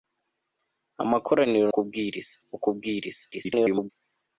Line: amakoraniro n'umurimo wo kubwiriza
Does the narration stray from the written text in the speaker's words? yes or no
yes